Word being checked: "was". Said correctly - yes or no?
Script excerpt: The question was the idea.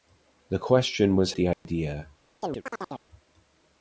yes